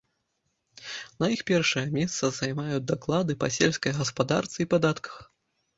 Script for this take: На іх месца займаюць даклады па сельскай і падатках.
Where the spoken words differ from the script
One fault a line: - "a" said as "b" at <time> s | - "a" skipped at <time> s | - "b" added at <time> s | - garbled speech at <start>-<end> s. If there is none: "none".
- "першае" added at 1.5 s
- "гаспадарцы" added at 4.0 s